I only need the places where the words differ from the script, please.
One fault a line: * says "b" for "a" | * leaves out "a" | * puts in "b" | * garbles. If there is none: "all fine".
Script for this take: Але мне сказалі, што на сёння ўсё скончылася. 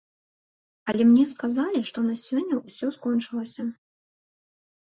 all fine